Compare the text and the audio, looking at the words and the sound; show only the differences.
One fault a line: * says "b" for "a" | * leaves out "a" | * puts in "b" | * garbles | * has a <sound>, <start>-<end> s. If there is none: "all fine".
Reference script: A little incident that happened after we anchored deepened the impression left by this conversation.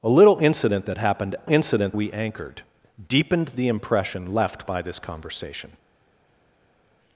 * says "incident" for "after"